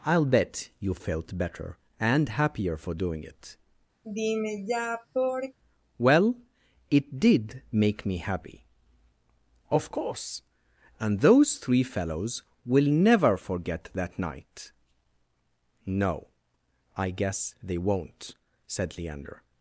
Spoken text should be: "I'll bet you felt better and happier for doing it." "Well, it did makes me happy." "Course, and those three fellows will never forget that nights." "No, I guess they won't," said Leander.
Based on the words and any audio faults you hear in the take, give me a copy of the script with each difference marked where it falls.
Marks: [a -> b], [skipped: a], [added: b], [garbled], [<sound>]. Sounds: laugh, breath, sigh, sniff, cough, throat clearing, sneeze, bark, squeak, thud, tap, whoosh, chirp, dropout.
"I'll bet you felt better and happier for doing it." [sigh] "Well, it did [makes -> make] me happy." [added: Of] "Course, and those three fellows will never forget that [nights." -> night] "No, I guess they won't," said Leander.